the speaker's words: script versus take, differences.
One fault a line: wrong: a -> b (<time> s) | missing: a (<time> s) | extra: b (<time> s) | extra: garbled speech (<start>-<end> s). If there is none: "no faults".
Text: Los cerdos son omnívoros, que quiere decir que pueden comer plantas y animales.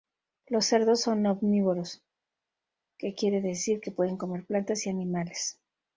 no faults